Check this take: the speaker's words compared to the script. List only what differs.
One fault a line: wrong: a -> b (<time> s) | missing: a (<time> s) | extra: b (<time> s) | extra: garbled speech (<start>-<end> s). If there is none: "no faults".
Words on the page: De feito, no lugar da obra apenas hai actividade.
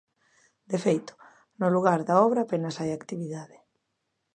no faults